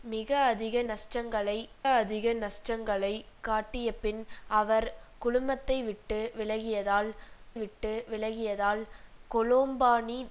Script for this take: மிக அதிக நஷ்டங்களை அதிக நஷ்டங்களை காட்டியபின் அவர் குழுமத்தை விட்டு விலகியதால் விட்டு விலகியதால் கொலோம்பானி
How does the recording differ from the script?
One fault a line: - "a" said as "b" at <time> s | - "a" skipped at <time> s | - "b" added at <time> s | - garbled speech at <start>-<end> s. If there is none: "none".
none